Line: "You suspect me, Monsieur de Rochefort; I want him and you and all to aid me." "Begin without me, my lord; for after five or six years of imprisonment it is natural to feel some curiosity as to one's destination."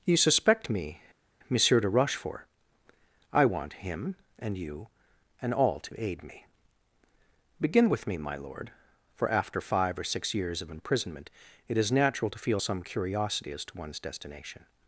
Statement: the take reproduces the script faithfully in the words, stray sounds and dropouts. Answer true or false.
false